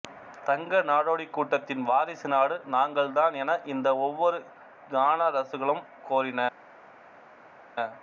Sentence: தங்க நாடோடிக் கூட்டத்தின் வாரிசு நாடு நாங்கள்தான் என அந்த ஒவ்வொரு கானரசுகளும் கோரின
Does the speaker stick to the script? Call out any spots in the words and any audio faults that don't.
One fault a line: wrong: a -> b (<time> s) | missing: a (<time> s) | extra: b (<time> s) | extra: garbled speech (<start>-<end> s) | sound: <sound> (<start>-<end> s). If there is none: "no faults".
wrong: அந்த -> இந்த (3.6 s)